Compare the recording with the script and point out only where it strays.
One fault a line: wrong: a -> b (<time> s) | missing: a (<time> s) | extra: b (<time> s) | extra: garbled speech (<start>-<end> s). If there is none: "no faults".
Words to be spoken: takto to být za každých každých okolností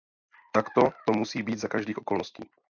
extra: musí (1.1 s)
missing: každých (2.0 s)